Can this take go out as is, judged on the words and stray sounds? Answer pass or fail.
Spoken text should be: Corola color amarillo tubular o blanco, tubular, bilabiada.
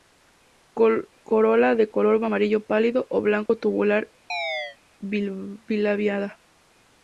fail